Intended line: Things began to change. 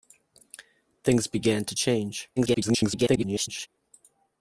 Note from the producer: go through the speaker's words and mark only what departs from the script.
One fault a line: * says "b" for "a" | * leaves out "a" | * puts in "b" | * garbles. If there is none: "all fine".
* garbles